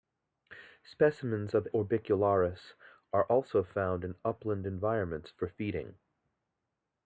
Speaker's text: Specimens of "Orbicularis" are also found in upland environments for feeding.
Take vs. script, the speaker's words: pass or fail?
pass